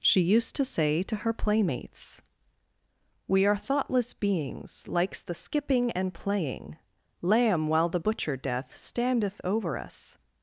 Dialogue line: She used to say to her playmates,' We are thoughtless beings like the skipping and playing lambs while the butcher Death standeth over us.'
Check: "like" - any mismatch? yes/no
yes